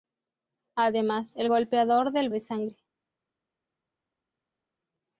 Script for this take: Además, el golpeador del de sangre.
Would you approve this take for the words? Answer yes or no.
yes